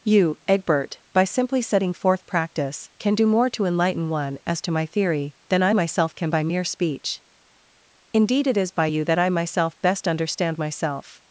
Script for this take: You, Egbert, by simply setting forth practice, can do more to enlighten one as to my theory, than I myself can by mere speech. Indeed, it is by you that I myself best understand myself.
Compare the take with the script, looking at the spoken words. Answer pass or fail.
pass